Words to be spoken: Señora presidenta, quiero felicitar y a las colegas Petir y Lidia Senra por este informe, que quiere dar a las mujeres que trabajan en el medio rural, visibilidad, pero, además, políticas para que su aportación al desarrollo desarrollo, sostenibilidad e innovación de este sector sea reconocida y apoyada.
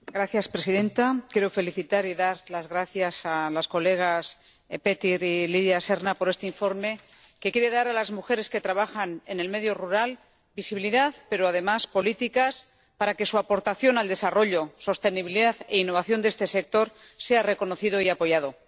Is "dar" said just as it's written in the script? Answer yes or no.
yes